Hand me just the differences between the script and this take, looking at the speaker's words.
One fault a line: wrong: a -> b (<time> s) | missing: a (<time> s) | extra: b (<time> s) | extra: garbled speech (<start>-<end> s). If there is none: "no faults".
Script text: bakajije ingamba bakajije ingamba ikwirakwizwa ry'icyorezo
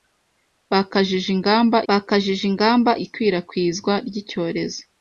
no faults